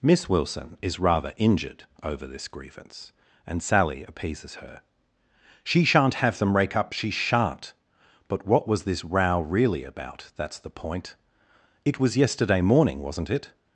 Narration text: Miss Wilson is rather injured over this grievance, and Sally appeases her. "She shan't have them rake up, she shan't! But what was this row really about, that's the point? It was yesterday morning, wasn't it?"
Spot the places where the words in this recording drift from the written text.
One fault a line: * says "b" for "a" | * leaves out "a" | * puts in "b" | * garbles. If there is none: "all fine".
all fine